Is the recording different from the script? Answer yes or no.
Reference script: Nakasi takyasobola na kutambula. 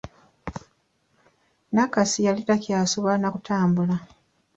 yes